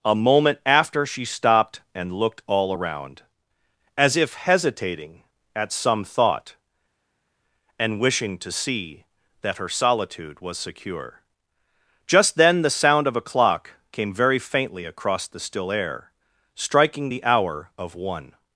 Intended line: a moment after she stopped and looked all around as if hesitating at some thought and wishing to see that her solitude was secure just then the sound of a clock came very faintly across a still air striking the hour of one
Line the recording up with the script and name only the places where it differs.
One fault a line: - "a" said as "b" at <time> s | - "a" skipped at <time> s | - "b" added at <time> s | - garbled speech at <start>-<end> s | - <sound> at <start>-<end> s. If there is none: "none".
- "a" said as "the" at 15.3 s